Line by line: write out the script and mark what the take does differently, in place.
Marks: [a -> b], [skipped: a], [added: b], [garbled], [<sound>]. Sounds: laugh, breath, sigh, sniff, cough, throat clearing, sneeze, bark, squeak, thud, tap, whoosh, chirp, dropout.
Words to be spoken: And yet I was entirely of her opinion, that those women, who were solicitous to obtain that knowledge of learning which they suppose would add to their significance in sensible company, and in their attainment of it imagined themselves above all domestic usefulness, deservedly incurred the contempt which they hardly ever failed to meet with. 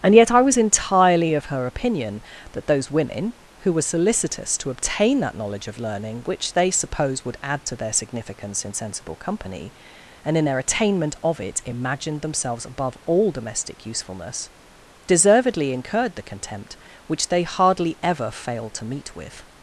And yet I was entirely of her opinion, that those women, who were solicitous to obtain that knowledge of learning which they suppose would add to their significance in sensible company, and in their attainment of it imagined themselves above all domestic usefulness, deservedly incurred the contempt which they hardly ever failed to meet with.